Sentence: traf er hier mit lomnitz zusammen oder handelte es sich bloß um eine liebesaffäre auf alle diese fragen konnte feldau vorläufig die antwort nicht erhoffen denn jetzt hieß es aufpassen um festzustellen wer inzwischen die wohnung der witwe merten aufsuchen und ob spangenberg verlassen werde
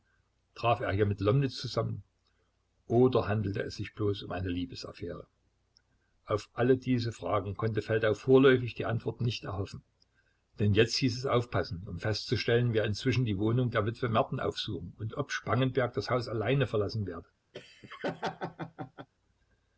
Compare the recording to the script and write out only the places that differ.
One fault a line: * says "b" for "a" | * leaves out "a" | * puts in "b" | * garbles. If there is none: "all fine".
* puts in "das haus allein"